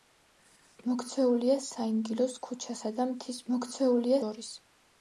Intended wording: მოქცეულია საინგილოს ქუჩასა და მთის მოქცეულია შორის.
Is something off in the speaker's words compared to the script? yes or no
no